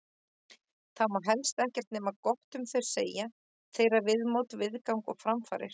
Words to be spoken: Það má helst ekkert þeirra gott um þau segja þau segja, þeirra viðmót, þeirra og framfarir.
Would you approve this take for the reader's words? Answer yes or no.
no